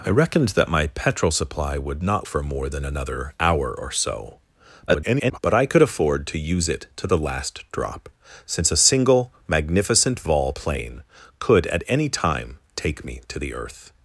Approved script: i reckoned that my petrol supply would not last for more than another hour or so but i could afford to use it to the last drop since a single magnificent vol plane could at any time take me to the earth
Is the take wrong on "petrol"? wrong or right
right